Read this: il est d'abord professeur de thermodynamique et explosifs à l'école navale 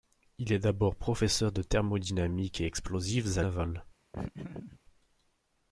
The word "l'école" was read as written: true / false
false